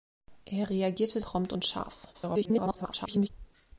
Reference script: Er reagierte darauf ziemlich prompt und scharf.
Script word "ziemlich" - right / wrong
wrong